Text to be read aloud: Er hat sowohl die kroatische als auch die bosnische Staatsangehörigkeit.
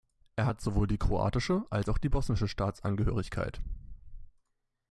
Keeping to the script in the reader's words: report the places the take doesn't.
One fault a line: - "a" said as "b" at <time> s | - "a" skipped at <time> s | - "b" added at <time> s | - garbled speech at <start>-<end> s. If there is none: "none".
none